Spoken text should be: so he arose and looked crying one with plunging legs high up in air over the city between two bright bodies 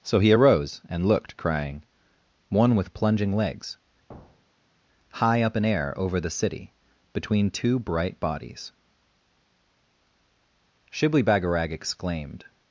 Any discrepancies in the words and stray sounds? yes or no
yes